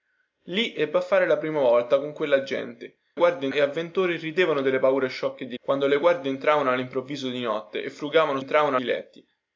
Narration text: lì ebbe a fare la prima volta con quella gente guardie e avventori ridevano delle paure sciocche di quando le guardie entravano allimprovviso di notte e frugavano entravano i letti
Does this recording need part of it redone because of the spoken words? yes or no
no